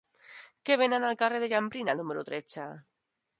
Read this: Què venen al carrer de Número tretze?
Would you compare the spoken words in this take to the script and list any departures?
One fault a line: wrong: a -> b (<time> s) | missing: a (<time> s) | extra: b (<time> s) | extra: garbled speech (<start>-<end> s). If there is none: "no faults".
extra: Jambrina (1.5 s)